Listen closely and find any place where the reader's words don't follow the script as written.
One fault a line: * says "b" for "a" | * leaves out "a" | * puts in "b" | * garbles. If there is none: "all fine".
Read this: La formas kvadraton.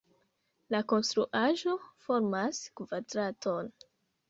* puts in "konstruaĵo"